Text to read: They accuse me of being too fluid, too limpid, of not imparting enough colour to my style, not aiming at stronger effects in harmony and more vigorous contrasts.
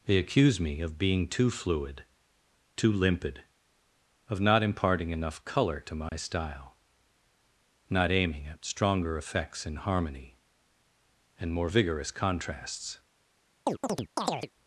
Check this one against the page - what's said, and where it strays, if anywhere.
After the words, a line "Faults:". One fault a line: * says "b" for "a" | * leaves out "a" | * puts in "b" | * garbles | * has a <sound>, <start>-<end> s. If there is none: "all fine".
They accuse me of being too fluid, too limpid, of not imparting enough colour to my style, not aiming at stronger effects in harmony and more vigorous contrasts.
Faults:
* has a dropout, 6.1-6.1 s
* has a chirp, 13.7-14.5 s